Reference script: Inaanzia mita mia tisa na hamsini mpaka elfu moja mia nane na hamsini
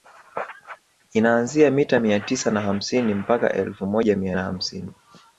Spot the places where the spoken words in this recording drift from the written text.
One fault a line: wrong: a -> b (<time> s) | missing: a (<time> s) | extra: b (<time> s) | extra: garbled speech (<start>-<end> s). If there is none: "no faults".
missing: nane (4.3 s)